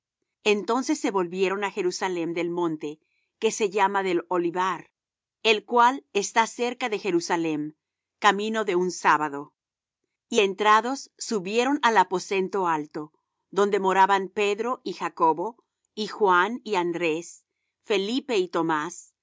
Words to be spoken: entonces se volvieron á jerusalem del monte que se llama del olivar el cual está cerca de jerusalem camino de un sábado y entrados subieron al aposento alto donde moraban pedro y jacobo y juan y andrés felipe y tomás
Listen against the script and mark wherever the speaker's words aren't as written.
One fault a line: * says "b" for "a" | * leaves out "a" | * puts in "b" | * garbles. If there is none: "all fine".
all fine